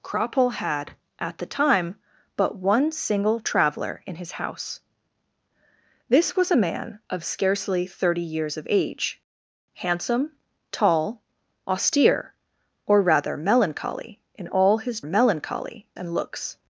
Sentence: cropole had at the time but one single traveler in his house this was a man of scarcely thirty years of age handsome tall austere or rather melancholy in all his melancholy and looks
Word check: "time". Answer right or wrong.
right